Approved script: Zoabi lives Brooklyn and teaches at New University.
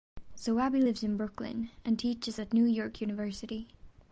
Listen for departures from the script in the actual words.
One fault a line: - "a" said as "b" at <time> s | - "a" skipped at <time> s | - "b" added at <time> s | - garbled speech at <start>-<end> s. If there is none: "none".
- "in" added at 1.0 s
- "York" added at 2.6 s